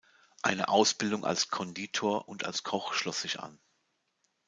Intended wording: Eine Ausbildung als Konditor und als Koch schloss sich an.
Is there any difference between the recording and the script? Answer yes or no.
no